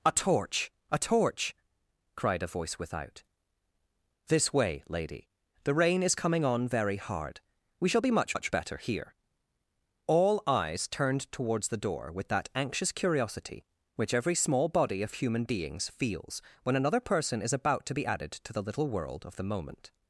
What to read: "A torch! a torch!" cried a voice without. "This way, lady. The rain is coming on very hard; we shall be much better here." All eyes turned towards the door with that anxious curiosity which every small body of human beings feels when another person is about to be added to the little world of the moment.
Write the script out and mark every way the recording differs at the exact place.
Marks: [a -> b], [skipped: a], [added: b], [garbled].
"A torch! a torch!" cried a voice without. "This way, lady. The rain is coming on very hard; we shall be much [added: much] better here." All eyes turned towards the door with that anxious curiosity which every small body of human beings feels when another person is about to be added to the little world of the moment.